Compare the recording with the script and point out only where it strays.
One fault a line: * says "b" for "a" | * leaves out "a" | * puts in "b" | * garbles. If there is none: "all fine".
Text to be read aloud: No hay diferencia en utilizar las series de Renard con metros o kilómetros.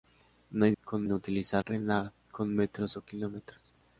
* says "con" for "diferencia"
* leaves out "las series de"